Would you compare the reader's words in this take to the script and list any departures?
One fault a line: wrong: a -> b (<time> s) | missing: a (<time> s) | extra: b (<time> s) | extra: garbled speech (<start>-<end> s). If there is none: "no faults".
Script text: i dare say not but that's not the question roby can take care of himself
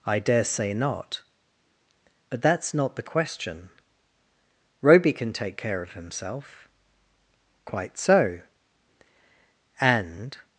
extra: quite so and (7.7 s)